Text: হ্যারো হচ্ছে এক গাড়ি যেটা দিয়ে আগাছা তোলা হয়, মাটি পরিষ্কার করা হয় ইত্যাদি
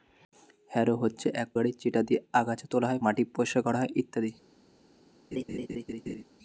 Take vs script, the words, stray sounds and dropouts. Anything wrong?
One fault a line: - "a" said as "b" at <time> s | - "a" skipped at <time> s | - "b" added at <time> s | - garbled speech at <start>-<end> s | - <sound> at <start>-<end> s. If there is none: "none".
- laugh at 5.3-6.2 s